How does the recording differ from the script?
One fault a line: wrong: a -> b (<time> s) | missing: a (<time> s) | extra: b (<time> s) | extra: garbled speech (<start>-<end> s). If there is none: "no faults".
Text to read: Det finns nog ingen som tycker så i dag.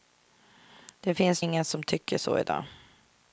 missing: nog (1.4 s)